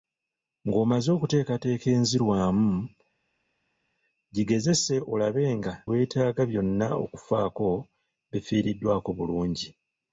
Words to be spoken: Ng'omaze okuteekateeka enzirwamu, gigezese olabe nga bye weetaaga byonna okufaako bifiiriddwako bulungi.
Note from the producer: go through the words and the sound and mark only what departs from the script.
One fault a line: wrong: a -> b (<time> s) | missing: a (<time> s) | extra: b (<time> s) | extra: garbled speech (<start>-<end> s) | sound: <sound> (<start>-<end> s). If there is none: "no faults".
missing: bye (5.7 s)